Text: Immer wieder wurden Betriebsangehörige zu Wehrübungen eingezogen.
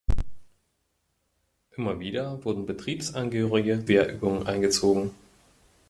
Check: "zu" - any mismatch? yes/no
yes